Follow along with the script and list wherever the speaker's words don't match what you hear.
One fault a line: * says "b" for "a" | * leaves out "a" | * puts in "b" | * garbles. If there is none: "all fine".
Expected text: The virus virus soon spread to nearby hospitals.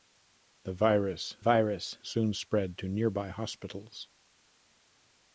all fine